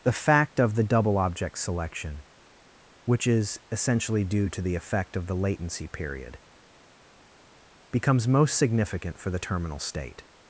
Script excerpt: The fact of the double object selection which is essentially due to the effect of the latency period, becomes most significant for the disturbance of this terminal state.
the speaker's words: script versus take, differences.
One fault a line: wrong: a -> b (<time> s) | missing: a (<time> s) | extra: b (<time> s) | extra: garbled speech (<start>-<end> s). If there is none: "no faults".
missing: disturbance of this (9.4 s)